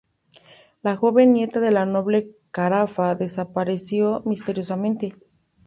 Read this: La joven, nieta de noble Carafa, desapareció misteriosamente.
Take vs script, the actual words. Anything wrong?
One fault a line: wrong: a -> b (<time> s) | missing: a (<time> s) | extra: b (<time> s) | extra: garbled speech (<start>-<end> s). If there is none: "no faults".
extra: la (1.7 s)